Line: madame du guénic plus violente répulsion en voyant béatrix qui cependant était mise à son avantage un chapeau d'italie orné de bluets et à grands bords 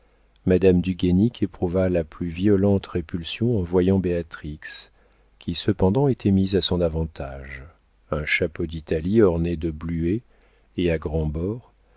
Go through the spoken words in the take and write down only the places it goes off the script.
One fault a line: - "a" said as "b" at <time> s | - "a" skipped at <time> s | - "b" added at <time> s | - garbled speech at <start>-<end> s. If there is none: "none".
- "éprouva la" added at 1.4 s